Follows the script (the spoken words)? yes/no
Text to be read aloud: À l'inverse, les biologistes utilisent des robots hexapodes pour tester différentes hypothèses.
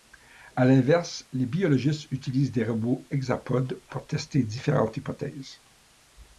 yes